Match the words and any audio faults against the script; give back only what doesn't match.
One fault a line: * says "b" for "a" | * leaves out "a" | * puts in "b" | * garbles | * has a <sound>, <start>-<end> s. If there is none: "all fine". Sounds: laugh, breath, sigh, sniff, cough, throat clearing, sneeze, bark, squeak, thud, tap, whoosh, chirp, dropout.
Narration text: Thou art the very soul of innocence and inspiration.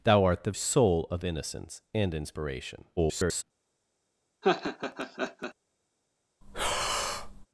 * leaves out "very"
* garbles
* has a laugh, 4.4-5.5 s
* has a breath, 6.4-7.5 s